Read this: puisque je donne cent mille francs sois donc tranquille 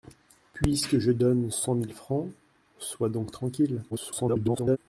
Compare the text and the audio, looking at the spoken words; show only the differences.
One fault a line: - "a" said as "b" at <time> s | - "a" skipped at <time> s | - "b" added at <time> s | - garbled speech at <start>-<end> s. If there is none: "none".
- garbled speech at 3.9-4.8 s